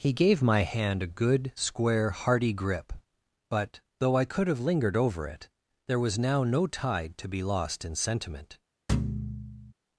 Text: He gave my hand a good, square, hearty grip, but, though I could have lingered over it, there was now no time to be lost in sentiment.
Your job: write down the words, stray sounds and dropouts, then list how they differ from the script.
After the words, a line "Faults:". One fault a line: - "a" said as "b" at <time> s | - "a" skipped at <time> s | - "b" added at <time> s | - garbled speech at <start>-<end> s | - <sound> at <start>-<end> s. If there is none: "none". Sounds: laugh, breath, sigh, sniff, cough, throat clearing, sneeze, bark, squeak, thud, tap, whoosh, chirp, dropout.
He gave my hand a good, square, hearty grip, but, though I could have lingered over it, there was now no tide to be lost in sentiment.
Faults:
- "time" said as "tide" at 6.7 s
- thud at 8.9-9.7 s